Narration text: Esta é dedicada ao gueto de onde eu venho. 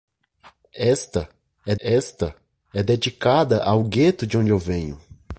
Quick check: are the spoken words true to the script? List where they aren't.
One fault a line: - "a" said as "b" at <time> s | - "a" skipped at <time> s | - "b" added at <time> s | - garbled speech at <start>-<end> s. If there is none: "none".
- "esta é" added at 1.8 s